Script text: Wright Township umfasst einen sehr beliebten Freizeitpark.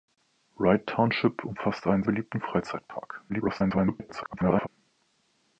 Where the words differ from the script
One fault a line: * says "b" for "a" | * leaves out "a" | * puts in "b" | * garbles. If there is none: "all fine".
* leaves out "sehr"
* garbles